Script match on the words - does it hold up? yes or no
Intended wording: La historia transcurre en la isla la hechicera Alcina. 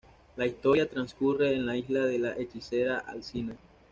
no